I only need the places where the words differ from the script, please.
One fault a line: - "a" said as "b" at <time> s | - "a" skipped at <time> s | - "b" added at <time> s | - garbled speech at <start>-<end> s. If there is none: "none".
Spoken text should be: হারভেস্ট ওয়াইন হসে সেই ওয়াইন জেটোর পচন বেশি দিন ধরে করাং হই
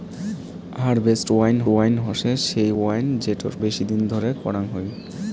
- "ওয়াইন" added at 1.7 s
- "পচন" skipped at 3.5 s